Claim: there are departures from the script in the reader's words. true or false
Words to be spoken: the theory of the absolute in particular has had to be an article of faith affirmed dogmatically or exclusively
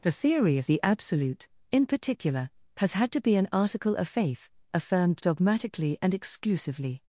true